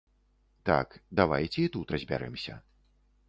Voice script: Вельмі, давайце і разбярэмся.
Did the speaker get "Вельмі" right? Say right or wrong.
wrong